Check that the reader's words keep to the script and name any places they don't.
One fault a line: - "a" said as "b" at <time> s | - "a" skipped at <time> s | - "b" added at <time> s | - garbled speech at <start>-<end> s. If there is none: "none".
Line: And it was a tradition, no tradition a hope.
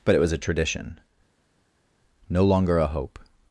- "And" said as "But" at 0.0 s
- "tradition" said as "longer" at 2.4 s